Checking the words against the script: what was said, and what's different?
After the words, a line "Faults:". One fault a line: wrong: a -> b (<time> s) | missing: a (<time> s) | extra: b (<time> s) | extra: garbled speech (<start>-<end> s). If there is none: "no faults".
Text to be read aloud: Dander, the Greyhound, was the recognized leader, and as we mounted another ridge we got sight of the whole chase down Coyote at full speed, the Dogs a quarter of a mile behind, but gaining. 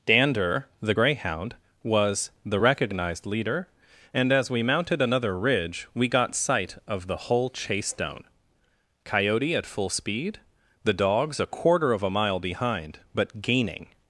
Dander, the Greyhound, was the recognized leader, and as we mounted another ridge we got sight of the whole chase down Coyote at full speed, the Dogs a quarter of a mile behind, but gaining.
Faults:
no faults